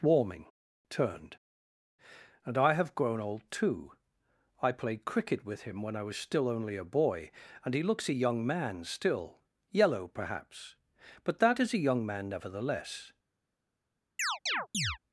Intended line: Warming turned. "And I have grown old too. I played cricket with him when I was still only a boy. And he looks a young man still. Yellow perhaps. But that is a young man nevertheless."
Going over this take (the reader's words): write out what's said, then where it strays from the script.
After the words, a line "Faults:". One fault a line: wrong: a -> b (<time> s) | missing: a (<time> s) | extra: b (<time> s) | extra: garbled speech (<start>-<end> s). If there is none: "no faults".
Warming turned. "And I have grown old too. I played cricket with him when I was still only a boy. And he looks a young man still. Yellow perhaps. But that is a young man nevertheless."
Faults:
no faults